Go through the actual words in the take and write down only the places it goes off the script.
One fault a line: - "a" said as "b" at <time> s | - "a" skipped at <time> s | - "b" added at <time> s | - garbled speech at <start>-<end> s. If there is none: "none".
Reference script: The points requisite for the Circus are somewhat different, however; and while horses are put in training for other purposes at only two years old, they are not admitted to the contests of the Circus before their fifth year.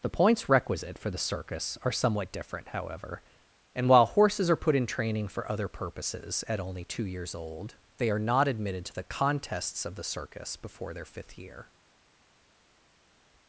none